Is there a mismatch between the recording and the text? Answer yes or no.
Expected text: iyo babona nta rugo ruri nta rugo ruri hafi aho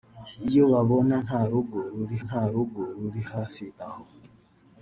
no